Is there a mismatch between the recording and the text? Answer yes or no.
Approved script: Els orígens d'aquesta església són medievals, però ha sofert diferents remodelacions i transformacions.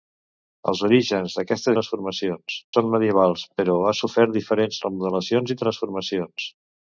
yes